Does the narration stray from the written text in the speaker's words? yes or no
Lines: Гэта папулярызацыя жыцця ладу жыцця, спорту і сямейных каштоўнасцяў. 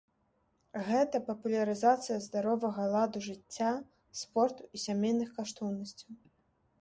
yes